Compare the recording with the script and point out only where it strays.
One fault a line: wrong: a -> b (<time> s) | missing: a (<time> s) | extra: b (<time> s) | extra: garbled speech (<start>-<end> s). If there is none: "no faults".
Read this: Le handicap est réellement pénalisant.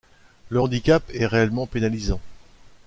no faults